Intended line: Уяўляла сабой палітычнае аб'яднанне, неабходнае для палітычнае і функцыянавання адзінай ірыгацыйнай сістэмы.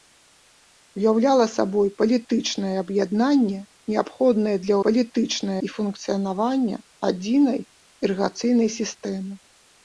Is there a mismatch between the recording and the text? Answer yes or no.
no